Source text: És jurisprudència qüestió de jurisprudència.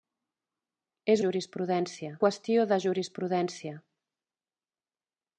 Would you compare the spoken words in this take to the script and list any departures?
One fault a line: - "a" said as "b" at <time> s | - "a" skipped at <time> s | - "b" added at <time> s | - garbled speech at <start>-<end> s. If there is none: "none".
none